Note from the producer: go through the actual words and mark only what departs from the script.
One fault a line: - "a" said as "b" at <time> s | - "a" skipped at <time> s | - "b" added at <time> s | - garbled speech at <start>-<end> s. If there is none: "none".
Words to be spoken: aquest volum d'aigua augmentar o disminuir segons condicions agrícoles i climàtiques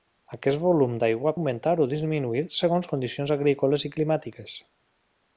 none